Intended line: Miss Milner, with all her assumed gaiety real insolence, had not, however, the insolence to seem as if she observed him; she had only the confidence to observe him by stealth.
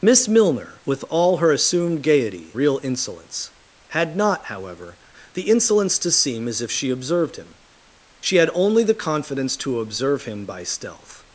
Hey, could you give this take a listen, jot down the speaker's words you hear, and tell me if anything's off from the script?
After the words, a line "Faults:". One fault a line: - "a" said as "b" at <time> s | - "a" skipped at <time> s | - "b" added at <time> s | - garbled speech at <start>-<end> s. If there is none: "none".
Miss Milner, with all her assumed gaiety real insolence, had not, however, the insolence to seem as if she observed him; she had only the confidence to observe him by stealth.
Faults:
none